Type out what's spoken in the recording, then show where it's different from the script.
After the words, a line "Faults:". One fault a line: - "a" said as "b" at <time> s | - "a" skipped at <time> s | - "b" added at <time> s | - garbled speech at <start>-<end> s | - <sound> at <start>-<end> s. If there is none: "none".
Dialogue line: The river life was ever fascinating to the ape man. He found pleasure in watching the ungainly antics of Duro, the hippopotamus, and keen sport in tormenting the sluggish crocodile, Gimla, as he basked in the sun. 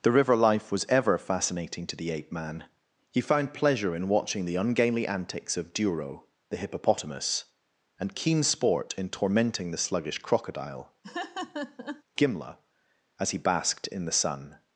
The river life was ever fascinating to the ape man. He found pleasure in watching the ungainly antics of Duro, the hippopotamus, and keen sport in tormenting the sluggish crocodile, Gimla, as he basked in the sun.
Faults:
- laugh at 11.0-12.0 s